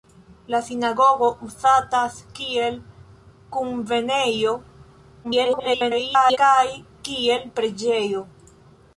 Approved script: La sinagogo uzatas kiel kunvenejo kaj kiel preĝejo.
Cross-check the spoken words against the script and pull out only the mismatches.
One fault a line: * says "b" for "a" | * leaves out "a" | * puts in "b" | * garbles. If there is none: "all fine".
* garbles